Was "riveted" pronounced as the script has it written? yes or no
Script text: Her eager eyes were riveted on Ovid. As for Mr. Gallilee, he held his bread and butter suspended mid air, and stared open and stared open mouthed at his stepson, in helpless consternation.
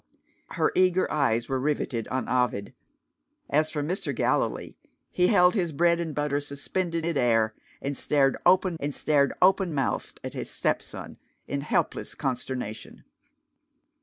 yes